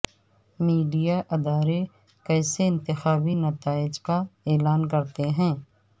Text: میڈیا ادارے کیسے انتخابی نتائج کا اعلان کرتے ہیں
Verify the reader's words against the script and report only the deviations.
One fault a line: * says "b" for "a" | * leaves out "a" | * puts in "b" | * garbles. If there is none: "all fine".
all fine